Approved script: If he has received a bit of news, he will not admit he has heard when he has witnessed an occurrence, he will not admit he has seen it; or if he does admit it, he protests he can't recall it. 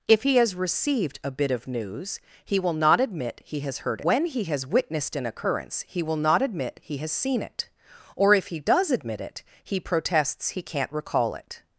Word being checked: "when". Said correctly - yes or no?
yes